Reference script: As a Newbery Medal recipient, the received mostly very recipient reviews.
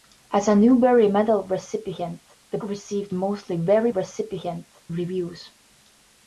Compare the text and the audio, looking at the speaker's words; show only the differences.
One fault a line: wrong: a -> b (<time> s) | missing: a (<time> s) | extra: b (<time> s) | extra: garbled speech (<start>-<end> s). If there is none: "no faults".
no faults